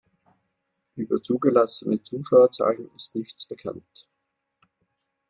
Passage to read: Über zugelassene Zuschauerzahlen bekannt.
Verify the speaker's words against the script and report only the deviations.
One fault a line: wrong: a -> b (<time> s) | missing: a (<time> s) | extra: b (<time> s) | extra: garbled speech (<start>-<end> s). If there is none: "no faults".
extra: ist nichts (3.0 s)